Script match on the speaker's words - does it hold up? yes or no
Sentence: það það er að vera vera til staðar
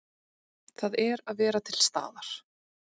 no